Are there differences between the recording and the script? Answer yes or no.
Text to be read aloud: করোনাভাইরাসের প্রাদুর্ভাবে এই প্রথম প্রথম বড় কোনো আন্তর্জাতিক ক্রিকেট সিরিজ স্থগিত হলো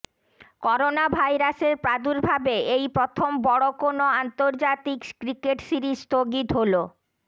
yes